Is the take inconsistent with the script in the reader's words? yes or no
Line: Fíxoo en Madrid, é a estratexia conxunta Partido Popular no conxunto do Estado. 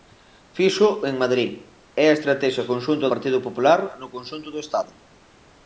no